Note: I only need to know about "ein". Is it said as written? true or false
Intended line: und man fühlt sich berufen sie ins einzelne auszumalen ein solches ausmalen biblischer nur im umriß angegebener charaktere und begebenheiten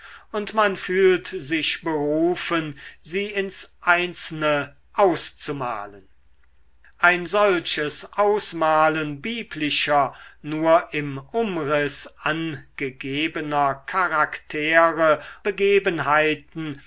true